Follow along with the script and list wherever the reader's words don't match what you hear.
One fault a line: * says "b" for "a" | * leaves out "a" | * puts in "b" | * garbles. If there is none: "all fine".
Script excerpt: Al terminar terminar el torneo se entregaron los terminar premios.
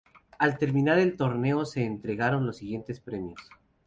* leaves out "terminar"
* says "siguientes" for "terminar"